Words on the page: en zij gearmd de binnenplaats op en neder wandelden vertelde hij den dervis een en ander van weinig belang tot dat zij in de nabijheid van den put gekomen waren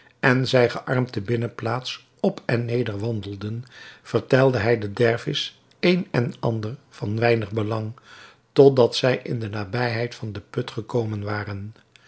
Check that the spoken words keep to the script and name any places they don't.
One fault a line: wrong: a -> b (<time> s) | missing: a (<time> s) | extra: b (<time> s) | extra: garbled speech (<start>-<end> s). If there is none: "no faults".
no faults